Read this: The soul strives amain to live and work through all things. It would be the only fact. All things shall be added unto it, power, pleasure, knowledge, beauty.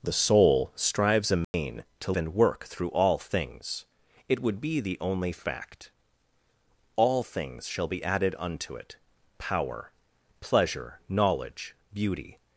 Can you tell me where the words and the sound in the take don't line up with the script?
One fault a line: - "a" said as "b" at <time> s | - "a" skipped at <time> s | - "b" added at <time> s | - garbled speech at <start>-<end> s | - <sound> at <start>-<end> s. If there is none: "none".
- dropout at 1.4-1.5 s
- "live" skipped at 2.1 s